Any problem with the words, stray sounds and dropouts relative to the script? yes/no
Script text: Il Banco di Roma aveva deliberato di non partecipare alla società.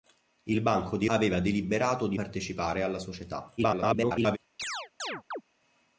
yes